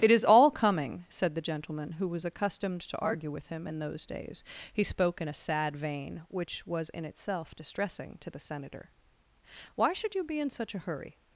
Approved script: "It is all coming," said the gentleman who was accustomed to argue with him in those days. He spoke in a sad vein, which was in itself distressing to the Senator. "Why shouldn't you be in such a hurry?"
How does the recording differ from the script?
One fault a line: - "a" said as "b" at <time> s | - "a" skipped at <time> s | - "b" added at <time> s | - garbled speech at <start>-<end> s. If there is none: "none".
- "shouldn't" said as "should" at 9.9 s